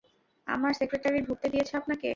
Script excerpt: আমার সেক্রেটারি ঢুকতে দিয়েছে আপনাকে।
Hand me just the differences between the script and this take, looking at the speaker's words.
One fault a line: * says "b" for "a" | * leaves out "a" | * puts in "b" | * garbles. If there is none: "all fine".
all fine